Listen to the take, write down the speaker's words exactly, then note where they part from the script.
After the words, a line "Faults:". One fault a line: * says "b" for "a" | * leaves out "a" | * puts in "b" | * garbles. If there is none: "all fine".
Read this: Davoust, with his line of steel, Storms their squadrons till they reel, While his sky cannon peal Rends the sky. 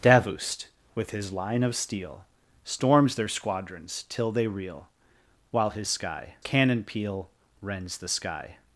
Davoust, with his line of steel, Storms their squadrons till they reel, While his sky cannon peal Rends the sky.
Faults:
all fine